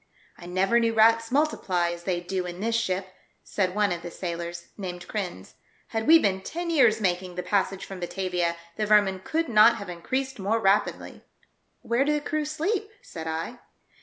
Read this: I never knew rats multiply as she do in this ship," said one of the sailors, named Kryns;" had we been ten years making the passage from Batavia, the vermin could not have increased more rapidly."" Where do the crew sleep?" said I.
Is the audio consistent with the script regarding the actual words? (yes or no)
no